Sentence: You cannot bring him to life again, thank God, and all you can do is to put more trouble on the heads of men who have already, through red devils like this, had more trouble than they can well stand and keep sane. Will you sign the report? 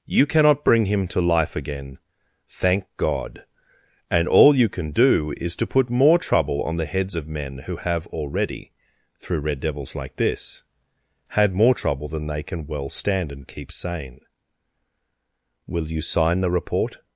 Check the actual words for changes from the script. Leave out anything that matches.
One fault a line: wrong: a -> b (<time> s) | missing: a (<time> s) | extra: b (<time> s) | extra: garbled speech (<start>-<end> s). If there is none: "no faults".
no faults